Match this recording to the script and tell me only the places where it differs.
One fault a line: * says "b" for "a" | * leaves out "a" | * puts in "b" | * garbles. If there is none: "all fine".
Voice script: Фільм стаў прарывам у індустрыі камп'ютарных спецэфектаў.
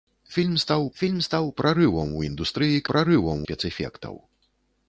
* puts in "фільм стаў"
* says "прарывам" for "камп'ютарных"